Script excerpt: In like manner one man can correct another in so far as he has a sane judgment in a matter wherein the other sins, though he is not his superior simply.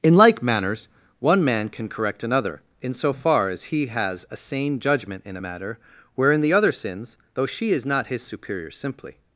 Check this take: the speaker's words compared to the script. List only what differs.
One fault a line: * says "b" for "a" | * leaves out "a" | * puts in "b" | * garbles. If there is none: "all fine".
* says "manners" for "manner"
* says "she" for "he"